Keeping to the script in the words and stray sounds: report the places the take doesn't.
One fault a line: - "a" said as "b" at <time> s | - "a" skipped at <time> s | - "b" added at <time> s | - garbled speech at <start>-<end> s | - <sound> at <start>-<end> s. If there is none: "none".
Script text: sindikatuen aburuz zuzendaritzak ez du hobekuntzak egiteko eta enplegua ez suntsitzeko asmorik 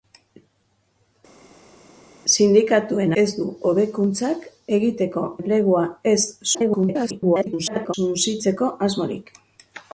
- "aburuz zuzendaritzak" skipped at 3.2 s
- "eta" skipped at 5.2 s
- garbled speech at 6.5-8.0 s